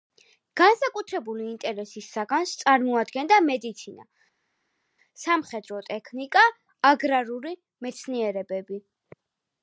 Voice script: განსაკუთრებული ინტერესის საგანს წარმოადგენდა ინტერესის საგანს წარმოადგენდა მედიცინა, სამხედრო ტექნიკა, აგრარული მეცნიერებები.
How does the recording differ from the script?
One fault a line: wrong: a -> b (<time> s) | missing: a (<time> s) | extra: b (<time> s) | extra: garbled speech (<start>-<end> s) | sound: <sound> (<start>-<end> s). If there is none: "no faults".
missing: ინტერესის საგანს წარმოადგენდა (3.4 s)